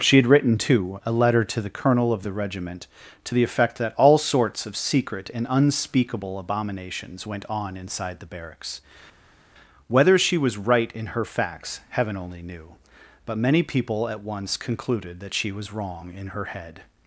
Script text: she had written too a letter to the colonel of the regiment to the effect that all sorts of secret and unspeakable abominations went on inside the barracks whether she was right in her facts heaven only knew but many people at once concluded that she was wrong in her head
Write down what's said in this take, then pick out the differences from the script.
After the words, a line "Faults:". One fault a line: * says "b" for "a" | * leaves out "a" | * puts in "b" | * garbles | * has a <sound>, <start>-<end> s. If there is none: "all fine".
she had written too a letter to the colonel of the regiment to the effect that all sorts of secret and unspeakable abominations went on inside the barracks whether she was right in her facts heaven only knew but many people at once concluded that she was wrong in her head
Faults:
all fine